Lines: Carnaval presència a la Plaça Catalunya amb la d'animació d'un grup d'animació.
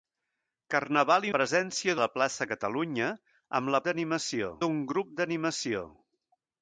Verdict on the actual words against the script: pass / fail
pass